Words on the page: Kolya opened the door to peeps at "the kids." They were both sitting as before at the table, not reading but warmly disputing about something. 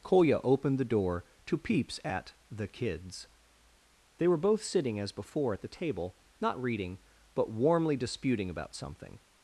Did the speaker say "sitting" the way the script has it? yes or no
yes